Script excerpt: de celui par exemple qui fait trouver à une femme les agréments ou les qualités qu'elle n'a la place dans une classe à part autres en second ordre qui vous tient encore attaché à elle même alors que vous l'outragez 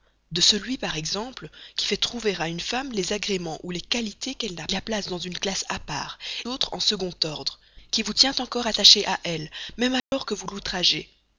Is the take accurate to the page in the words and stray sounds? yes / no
no